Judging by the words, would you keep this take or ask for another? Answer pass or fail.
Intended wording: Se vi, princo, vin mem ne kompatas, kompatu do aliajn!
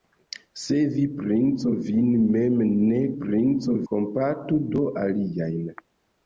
fail